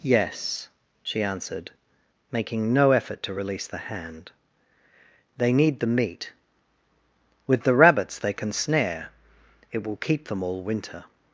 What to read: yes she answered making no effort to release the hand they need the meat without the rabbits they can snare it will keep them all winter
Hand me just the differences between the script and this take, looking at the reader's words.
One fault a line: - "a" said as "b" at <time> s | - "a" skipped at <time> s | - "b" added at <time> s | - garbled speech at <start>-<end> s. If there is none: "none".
- "without" said as "with" at 7.5 s